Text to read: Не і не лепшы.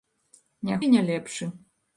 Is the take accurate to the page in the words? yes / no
yes